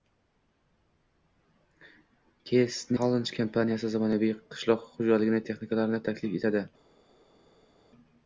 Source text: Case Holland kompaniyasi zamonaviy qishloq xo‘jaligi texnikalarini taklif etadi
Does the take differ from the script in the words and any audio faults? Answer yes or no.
no